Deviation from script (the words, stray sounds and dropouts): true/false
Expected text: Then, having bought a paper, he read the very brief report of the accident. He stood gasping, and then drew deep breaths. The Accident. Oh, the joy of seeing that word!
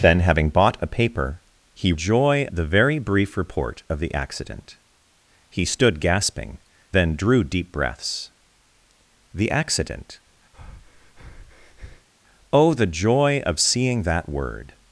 true